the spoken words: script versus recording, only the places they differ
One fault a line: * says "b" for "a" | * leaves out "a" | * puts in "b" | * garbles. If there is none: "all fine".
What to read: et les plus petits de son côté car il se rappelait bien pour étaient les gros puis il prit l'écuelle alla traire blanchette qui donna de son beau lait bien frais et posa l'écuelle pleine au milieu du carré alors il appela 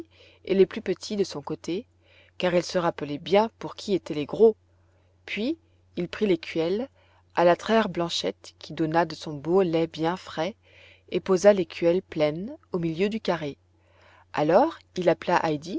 * puts in "qui"